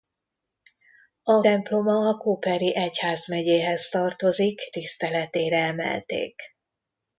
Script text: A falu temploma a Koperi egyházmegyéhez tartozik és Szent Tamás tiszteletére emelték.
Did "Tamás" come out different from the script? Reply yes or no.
yes